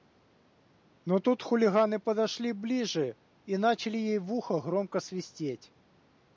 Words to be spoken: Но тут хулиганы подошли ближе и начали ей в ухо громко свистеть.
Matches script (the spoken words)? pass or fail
pass